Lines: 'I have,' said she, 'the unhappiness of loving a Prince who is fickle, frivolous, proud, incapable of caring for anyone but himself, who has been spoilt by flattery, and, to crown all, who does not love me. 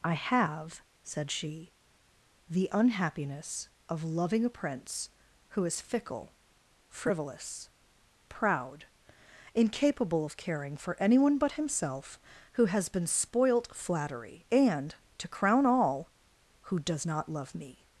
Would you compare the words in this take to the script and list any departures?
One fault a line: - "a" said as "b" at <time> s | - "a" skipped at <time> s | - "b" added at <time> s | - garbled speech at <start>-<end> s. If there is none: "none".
- "by" skipped at 13.8 s